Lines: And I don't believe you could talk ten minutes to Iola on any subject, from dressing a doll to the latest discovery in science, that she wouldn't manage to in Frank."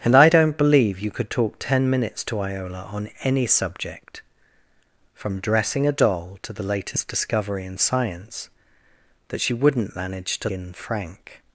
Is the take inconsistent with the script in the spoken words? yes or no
no